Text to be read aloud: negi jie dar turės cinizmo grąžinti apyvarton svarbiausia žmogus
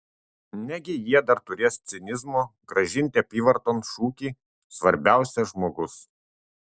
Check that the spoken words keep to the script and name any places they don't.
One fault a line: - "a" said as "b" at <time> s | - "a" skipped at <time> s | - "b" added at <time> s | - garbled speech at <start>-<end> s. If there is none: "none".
- "šūkį" added at 3.9 s